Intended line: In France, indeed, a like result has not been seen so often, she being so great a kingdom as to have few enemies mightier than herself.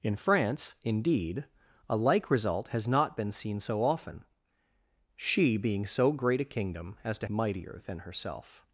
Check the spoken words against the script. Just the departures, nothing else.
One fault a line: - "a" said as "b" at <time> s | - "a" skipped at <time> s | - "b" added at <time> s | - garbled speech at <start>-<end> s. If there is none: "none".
- "have few enemies" skipped at 7.3 s